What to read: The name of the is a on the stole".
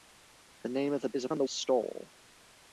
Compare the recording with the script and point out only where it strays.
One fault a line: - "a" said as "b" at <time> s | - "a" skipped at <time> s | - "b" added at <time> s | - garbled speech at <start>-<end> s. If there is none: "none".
none